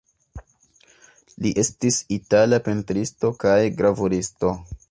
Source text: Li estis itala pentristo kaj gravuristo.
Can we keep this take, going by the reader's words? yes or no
yes